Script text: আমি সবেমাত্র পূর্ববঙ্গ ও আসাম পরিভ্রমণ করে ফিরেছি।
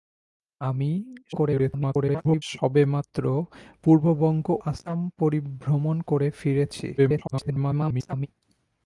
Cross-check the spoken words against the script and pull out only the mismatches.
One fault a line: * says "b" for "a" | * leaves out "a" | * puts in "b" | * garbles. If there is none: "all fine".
* garbles
* leaves out "ও"
* garbles